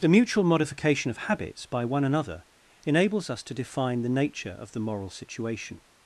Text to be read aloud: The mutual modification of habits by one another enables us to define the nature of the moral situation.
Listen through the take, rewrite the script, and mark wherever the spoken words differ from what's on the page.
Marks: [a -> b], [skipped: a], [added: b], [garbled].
The mutual modification of habits by one another enables us to define the nature of the moral situation.